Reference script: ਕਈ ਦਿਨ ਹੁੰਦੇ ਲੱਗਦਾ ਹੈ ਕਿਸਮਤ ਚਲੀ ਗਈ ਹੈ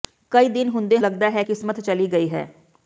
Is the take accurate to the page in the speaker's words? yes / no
yes